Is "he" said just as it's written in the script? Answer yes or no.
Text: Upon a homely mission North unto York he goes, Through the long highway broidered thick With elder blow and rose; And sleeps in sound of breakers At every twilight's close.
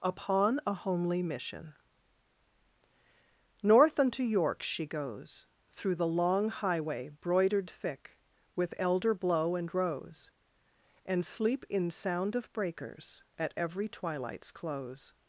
no